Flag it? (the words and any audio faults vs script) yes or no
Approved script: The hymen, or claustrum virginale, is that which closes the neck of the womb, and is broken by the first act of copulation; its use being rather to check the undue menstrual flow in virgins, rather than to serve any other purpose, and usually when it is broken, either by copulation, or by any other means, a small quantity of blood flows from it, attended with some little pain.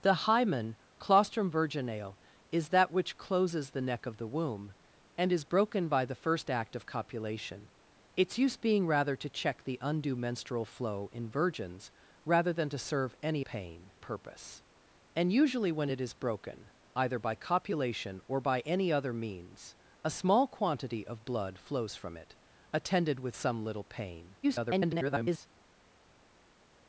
yes